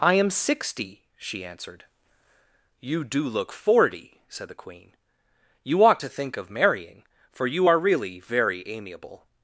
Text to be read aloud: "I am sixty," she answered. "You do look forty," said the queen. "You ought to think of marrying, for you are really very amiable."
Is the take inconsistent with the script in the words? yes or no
no